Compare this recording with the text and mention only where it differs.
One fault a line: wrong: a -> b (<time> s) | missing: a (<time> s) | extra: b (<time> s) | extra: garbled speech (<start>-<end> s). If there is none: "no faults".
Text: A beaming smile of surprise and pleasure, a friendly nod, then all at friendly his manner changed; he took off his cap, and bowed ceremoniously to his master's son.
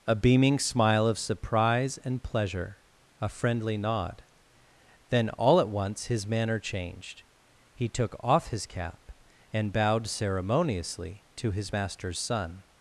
wrong: friendly -> once (5.7 s)